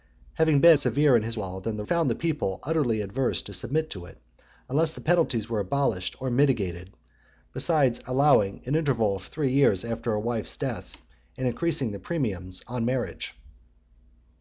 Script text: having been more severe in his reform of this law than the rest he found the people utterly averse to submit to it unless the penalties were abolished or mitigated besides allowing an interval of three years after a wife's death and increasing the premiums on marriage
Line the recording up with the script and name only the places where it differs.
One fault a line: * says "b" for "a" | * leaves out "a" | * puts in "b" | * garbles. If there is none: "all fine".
* leaves out "more"
* leaves out "reform of this"
* leaves out "rest he"